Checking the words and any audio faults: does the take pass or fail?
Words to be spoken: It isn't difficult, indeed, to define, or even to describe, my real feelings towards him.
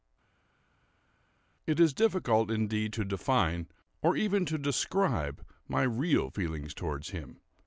fail